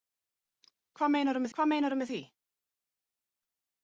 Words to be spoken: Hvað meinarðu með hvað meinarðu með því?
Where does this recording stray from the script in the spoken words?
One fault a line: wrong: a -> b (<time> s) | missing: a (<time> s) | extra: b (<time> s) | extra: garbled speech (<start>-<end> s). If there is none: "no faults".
no faults